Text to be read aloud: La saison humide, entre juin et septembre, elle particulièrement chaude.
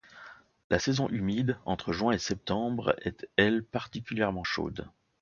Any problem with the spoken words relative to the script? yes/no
yes